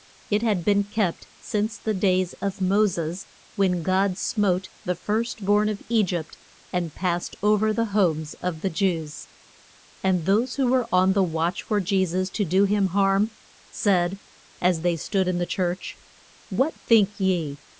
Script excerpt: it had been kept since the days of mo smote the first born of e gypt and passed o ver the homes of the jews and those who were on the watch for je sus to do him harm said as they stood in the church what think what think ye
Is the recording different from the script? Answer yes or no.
yes